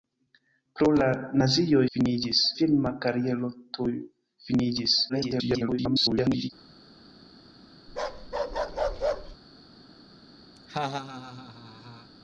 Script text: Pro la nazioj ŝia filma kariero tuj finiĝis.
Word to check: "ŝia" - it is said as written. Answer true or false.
false